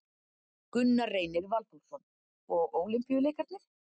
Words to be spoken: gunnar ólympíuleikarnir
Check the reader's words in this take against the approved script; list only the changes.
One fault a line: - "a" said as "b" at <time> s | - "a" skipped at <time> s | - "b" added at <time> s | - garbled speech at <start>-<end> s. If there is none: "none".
- "reynir valþórsson og" added at 1.1 s